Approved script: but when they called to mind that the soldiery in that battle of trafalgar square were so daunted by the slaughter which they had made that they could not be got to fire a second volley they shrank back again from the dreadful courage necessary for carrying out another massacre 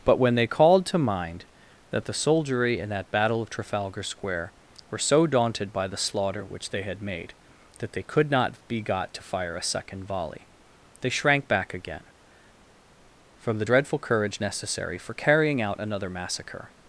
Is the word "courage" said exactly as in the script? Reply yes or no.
yes